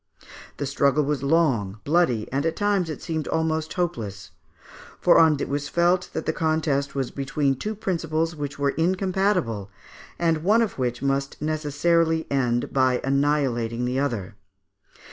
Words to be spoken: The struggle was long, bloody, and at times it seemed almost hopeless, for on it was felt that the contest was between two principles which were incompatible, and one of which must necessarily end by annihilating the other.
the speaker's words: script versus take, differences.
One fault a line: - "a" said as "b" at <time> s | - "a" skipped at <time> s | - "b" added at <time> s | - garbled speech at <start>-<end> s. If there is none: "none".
none